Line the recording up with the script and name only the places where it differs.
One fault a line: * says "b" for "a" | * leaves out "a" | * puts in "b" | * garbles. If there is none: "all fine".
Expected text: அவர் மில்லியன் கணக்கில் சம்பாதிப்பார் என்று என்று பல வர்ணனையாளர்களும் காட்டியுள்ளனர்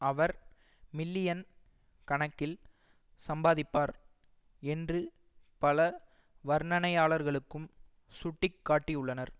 * leaves out "என்று"
* puts in "சுட்டி"